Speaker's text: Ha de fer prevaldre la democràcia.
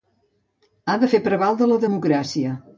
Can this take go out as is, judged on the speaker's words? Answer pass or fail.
pass